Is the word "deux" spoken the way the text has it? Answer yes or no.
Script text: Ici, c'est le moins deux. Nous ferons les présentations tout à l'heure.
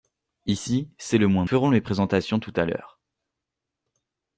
no